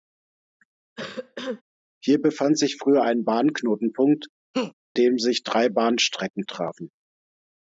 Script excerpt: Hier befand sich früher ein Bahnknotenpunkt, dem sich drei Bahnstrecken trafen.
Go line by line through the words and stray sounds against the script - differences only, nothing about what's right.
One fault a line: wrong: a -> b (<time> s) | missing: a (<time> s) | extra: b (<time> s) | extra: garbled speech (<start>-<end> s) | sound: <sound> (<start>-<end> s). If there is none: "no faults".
sound: cough (1.0-1.6 s)
sound: laugh (4.5-4.7 s)